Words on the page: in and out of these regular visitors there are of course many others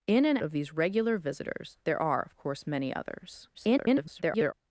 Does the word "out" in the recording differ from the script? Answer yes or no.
yes